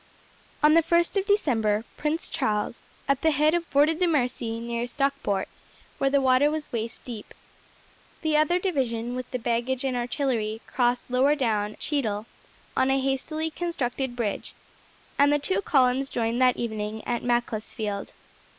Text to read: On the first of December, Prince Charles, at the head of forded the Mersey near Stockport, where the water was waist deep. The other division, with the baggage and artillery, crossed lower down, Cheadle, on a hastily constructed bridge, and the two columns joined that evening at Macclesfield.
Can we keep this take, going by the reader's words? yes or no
yes